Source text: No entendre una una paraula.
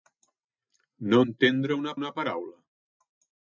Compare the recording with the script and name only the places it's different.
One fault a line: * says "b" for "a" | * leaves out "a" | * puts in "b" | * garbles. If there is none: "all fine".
all fine